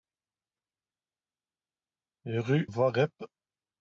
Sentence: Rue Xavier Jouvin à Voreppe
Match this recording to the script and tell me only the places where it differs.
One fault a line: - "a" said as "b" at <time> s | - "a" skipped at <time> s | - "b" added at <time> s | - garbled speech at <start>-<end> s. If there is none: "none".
- "Xavier Jouvin à" skipped at 2.7 s